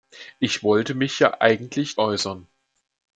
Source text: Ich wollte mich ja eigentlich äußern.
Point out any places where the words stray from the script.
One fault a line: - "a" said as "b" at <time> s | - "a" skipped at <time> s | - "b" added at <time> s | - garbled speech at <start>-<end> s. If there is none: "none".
none